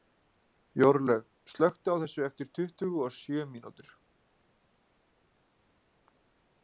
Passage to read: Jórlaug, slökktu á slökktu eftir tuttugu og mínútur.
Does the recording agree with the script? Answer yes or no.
no